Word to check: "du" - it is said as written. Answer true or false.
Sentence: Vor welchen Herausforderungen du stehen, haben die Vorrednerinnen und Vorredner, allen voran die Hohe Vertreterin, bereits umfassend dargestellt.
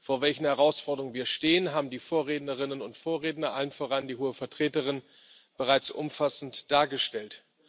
false